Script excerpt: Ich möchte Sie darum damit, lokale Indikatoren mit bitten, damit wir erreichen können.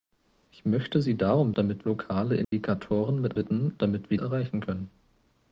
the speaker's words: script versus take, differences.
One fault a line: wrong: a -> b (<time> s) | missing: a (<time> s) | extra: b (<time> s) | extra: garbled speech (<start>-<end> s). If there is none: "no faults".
no faults